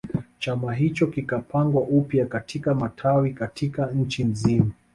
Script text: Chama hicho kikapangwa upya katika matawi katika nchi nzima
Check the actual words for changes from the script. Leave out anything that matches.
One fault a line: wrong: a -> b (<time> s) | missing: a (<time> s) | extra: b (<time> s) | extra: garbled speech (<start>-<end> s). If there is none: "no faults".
no faults